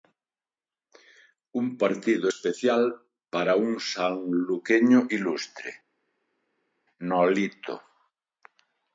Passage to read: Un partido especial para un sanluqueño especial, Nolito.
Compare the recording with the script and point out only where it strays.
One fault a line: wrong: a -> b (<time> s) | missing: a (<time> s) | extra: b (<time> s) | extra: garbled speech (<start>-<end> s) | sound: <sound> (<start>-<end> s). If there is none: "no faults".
wrong: especial -> ilustre (5.1 s)